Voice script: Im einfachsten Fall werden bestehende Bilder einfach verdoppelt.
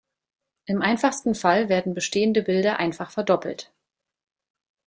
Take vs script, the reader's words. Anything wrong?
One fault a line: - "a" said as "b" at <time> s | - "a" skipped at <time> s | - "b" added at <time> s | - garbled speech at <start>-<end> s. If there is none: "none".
none